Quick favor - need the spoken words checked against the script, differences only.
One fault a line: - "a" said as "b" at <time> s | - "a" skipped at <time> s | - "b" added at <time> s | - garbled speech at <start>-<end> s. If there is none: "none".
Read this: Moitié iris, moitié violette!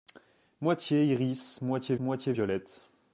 - "moitié" added at 2.0 s